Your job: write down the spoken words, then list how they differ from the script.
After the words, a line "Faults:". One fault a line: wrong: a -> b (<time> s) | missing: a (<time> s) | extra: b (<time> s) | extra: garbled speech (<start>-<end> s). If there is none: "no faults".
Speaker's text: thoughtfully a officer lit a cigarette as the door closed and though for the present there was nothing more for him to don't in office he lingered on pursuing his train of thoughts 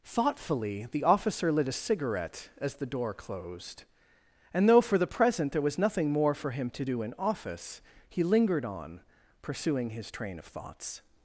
thoughtfully the officer lit a cigarette as the door closed and though for the present there was nothing more for him to do in office he lingered on pursuing his train of thoughts
Faults:
wrong: a -> the (0.9 s)
wrong: don't -> do (6.8 s)